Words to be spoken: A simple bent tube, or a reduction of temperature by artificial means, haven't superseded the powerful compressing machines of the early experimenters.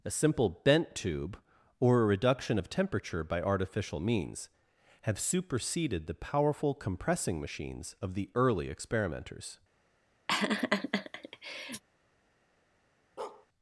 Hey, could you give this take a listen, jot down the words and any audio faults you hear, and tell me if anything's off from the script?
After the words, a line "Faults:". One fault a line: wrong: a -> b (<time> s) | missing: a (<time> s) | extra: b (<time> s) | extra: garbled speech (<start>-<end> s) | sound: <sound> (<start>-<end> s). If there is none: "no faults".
A simple bent tube, or a reduction of temperature by artificial means, have superseded the powerful compressing machines of the early experimenters.
Faults:
wrong: haven't -> have (5.0 s)
sound: laugh (10.3-11.8 s)
sound: bark (13.2-13.5 s)